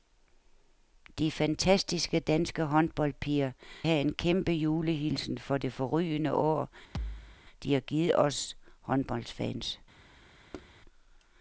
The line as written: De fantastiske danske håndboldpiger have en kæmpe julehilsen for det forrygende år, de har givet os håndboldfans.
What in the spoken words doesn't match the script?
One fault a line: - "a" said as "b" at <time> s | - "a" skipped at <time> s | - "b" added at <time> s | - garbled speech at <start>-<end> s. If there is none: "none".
none